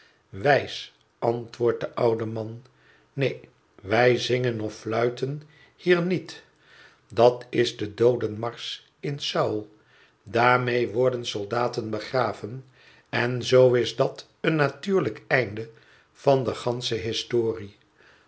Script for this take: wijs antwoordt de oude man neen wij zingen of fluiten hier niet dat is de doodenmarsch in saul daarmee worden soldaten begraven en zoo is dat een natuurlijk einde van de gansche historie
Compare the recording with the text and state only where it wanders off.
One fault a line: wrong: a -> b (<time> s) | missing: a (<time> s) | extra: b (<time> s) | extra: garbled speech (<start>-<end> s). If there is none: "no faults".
no faults